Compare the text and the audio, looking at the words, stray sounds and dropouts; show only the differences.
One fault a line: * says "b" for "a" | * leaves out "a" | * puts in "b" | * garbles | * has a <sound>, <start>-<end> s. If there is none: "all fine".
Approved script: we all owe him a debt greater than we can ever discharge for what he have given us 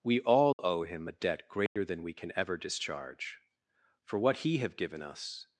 * has a dropout, 0.5-0.6 s
* has a dropout, 1.7-1.8 s